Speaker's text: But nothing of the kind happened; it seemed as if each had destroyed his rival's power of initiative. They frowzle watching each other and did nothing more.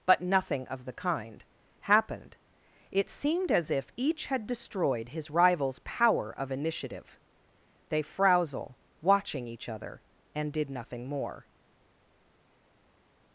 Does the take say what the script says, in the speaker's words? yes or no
yes